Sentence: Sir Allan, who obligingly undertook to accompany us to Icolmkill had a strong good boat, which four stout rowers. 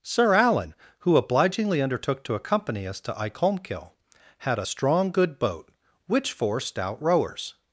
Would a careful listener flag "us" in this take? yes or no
no